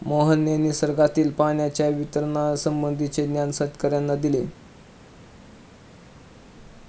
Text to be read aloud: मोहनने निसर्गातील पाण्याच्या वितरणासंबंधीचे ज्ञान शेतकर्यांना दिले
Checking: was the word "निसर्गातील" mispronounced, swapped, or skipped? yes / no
no